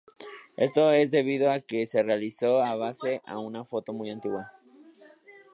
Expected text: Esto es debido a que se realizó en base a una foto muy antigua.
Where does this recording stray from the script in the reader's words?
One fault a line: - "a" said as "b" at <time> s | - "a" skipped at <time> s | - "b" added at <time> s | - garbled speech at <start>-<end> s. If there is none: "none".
none